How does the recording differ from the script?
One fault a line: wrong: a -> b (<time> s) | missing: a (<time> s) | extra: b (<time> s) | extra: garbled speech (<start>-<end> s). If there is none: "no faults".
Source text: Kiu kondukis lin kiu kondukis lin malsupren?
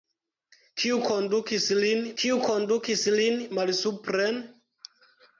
no faults